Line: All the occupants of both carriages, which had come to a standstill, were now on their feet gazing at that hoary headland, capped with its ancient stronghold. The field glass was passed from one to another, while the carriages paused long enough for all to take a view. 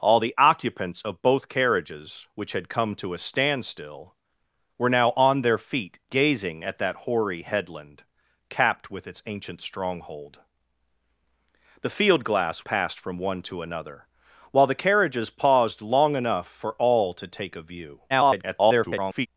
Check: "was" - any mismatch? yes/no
yes